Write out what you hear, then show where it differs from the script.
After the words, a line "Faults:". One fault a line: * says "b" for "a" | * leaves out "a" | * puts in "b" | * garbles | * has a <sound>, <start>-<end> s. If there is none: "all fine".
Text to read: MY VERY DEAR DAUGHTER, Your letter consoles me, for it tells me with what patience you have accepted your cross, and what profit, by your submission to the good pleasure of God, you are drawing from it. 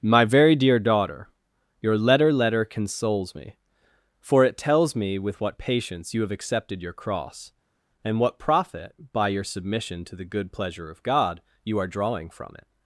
MY VERY DEAR DAUGHTER, Your letter letter consoles me, for it tells me with what patience you have accepted your cross, and what profit, by your submission to the good pleasure of God, you are drawing from it.
Faults:
* puts in "letter"